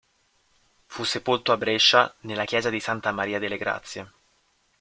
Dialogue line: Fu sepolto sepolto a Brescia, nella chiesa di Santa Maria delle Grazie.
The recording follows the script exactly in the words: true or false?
false